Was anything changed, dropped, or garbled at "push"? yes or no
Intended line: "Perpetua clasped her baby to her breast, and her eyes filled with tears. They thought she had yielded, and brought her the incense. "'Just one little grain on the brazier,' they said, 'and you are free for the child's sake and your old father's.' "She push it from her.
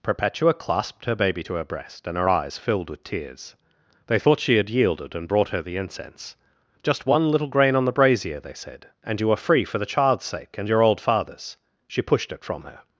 yes